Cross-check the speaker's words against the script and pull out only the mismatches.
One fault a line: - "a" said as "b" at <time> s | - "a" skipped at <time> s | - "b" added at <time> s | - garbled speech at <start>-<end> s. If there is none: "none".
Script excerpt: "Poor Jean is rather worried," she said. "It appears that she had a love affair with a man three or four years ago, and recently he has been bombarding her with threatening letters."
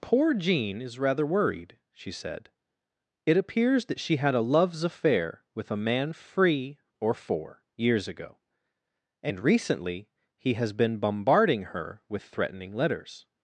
- "love" said as "loves" at 4.4 s
- "three" said as "free" at 6.1 s